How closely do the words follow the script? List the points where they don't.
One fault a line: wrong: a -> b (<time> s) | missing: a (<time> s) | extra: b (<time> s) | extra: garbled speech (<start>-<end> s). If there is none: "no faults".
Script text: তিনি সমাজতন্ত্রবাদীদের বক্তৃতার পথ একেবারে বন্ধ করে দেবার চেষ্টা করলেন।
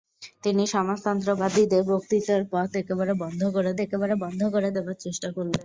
extra: একেবারে বন্ধ করে (3.8 s)